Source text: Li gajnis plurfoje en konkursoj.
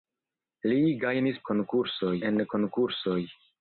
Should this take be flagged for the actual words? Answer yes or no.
yes